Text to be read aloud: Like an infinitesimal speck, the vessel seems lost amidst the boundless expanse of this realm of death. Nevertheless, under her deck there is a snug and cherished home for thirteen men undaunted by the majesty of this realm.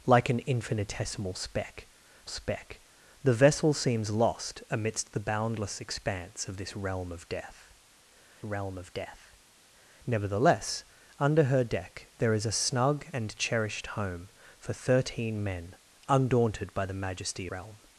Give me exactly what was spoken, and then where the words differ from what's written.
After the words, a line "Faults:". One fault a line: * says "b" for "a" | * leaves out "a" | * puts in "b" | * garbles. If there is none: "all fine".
Like an infinitesimal speck speck, the vessel seems lost amidst the boundless expanse of this realm of death realm of death. Nevertheless, under her deck there is a snug and cherished home for thirteen men undaunted by the majesty realm.
Faults:
* puts in "speck"
* puts in "realm of death"
* leaves out "of this"